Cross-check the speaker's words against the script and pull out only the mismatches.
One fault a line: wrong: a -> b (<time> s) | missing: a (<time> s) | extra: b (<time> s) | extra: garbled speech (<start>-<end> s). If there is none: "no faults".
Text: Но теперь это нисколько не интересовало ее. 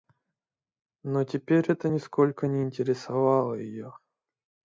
no faults